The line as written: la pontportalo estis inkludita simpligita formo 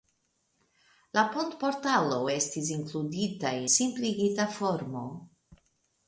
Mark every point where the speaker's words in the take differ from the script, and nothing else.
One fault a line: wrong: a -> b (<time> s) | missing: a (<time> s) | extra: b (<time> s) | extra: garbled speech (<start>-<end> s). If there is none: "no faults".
no faults